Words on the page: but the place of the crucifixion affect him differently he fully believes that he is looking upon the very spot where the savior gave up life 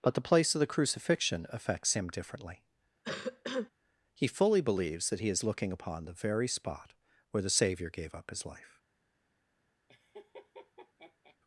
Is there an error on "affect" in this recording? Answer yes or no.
yes